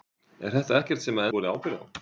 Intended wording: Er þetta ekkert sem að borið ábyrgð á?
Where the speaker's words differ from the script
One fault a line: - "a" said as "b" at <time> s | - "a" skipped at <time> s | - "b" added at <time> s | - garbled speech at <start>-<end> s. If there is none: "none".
none